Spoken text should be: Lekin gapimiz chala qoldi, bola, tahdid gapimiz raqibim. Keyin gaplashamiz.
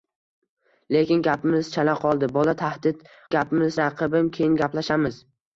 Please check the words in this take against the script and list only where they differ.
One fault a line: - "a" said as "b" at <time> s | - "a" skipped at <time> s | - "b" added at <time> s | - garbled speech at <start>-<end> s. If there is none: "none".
none